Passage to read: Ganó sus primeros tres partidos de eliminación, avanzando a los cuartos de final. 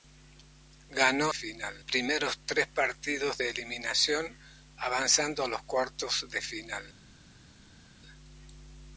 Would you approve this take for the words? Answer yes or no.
no